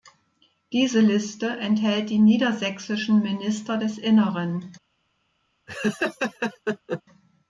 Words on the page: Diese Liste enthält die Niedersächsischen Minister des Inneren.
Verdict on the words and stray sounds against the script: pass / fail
fail